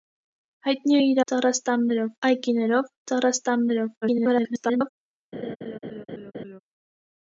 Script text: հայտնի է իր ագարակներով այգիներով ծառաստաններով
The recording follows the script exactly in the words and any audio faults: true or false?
false